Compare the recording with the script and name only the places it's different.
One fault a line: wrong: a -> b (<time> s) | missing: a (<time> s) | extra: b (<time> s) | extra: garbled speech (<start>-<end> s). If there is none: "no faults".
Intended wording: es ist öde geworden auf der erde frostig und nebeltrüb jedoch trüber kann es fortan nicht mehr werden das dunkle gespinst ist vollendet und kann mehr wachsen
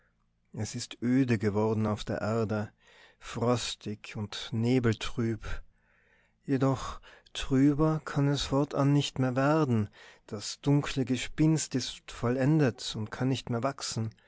extra: nicht (13.3 s)